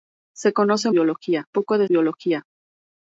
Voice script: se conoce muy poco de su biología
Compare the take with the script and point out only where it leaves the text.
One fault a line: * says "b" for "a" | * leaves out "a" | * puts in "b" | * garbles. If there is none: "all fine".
* says "biología" for "muy"
* leaves out "su"